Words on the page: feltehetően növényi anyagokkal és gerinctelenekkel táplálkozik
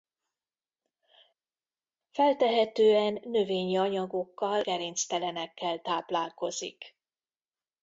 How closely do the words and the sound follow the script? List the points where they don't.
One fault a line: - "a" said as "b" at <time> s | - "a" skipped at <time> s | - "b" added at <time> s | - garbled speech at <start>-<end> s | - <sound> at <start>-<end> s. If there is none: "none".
- "és" skipped at 4.6 s